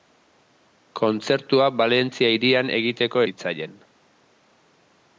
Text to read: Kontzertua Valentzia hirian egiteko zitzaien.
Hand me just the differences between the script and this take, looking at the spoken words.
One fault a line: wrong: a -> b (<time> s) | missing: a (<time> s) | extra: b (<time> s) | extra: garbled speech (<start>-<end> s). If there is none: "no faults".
no faults